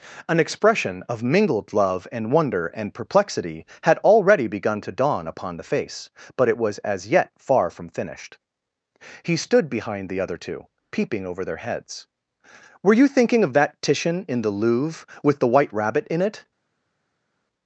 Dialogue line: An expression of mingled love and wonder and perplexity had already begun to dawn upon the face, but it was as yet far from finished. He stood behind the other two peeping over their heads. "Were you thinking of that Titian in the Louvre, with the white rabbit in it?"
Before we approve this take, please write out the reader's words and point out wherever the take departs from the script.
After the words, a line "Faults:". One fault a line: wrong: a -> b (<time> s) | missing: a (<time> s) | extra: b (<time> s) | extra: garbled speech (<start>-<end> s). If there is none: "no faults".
An expression of mingled love and wonder and perplexity had already begun to dawn upon the face, but it was as yet far from finished. He stood behind the other two peeping over their heads. "Were you thinking of that Titian in the Louvre, with the white rabbit in it?"
Faults:
no faults